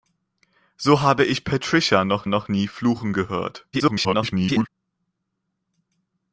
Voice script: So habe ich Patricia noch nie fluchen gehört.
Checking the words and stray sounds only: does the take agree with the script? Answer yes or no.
no